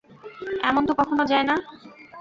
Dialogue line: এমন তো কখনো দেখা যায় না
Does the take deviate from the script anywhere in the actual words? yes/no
yes